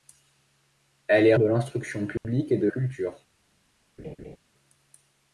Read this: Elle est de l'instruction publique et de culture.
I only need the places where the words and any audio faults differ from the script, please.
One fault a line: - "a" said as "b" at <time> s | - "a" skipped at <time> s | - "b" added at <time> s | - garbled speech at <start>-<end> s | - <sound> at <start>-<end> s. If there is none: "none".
- dropout at 2.2-2.2 s
- laugh at 4.0-4.4 s